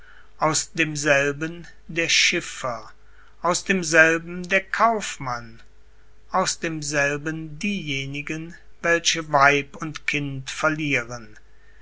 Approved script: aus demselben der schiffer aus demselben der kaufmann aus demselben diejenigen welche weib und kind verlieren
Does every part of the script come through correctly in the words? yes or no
yes